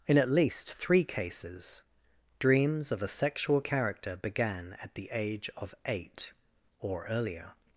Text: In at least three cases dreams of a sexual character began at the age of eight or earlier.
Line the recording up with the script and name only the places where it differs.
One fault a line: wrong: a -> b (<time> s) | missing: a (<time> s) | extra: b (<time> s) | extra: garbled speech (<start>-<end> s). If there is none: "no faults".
no faults